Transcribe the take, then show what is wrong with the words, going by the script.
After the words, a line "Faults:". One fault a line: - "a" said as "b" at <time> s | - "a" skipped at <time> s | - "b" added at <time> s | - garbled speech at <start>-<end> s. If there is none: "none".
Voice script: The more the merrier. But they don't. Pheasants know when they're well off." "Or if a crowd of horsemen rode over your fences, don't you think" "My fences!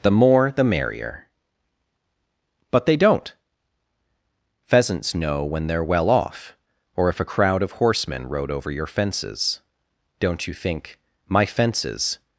The more the merrier. But they don't. Pheasants know when they're well off." "Or if a crowd of horsemen rode over your fences, don't you think" "My fences!
Faults:
none